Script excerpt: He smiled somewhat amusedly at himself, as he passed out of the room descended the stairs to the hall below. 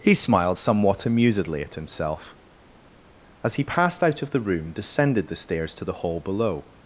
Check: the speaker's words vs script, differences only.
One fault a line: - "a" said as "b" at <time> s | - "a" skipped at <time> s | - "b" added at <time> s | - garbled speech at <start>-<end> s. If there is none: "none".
none